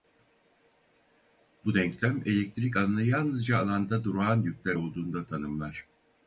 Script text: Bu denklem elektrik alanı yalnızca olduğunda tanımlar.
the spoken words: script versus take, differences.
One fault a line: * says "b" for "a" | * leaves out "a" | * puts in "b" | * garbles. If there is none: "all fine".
* puts in "alanda durağan yükler"